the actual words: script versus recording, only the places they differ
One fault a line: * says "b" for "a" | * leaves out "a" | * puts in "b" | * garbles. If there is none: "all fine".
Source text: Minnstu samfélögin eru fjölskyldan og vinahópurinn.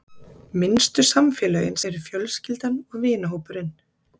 all fine